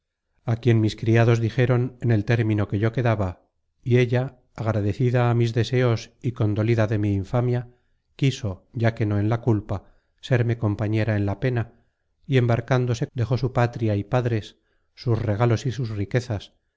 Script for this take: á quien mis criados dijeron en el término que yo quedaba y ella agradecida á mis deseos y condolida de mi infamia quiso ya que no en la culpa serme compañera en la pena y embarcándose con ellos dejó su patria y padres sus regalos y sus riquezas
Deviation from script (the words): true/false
true